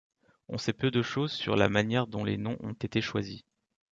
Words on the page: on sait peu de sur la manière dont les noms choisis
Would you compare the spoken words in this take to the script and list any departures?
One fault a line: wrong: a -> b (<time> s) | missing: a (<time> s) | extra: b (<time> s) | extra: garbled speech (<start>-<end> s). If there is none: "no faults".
extra: choses (1.0 s)
extra: ont été (2.6 s)